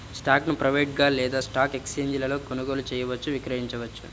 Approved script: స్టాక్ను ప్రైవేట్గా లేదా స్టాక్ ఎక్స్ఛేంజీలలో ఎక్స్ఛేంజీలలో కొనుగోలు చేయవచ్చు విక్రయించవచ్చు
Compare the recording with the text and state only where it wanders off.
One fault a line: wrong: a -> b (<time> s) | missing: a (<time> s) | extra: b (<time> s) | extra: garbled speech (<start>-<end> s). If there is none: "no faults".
missing: ఎక్స్ఛేంజీలలో (2.4 s)